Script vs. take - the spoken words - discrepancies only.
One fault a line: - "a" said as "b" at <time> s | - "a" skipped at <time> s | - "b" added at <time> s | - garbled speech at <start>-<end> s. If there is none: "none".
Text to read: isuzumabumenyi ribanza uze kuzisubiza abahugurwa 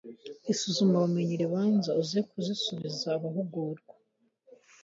none